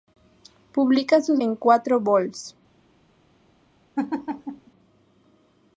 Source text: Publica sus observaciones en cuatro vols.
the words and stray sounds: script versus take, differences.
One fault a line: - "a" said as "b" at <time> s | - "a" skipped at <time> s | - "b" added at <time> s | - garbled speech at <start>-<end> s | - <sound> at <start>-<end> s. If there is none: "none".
- "observaciones" skipped at 1.4 s
- laugh at 4.0-4.7 s